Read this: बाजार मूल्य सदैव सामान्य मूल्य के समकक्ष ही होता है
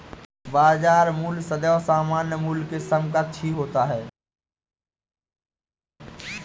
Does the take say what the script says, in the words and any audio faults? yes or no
yes